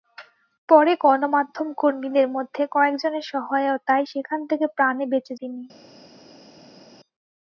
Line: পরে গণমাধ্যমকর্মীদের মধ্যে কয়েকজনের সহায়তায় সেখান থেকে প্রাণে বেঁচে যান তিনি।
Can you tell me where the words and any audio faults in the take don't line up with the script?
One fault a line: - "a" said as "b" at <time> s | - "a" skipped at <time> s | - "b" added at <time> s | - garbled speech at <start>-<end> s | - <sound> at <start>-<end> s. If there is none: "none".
- "যান" skipped at 5.3 s